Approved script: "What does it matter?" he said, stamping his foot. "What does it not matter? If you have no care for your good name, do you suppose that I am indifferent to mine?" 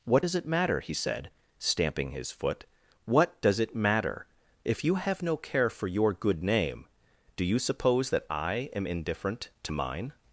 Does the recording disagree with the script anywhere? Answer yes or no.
yes